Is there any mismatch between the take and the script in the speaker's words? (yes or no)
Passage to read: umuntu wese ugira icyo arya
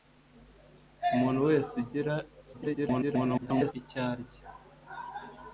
yes